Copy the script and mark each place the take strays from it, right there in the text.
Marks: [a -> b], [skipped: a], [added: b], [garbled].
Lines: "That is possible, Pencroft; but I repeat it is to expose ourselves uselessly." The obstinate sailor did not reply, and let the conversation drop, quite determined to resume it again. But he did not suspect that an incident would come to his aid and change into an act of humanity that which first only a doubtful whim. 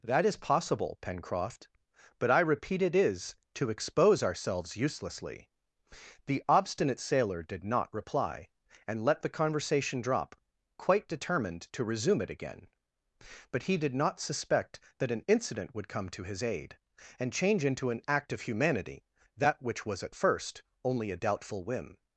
"That is possible, Pencroft; but I repeat it is to expose ourselves uselessly." The obstinate sailor did not reply, and let the conversation drop, quite determined to resume it again. But he did not suspect that an incident would come to his aid and change into an act of humanity that which [added: was at] first only a doubtful whim.